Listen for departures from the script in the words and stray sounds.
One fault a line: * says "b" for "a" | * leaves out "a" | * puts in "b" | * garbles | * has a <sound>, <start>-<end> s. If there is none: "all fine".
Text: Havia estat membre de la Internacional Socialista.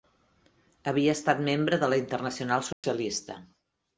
* has a dropout, 2.7-2.8 s